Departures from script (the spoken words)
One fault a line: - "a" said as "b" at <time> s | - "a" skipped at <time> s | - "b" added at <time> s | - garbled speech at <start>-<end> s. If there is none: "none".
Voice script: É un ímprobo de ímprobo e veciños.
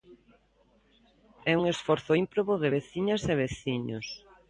- "esforzo" added at 1.7 s
- "ímprobo" said as "veciñas" at 2.8 s